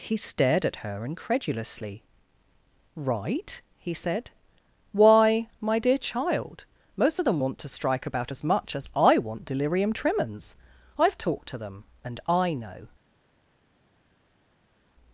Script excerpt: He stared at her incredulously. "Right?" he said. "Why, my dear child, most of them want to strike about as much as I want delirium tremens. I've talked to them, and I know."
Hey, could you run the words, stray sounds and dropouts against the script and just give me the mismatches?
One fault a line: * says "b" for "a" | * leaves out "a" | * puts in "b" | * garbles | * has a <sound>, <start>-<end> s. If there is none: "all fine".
all fine